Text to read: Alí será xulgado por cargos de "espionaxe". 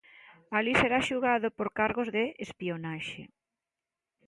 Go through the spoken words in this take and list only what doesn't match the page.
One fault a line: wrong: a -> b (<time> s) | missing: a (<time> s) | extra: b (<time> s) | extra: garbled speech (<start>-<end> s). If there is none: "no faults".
no faults